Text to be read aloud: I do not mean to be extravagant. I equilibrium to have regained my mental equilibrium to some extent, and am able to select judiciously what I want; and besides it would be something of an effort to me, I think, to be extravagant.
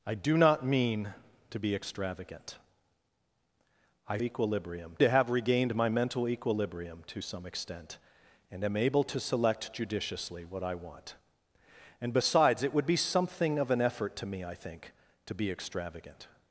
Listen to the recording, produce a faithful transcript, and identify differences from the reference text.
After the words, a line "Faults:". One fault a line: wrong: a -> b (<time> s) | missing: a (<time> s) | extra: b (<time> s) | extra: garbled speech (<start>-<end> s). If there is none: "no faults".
I do not mean to be extravagant. I equilibrium to have regained my mental equilibrium to some extent, and am able to select judiciously what I want; and besides it would be something of an effort to me, I think, to be extravagant.
Faults:
no faults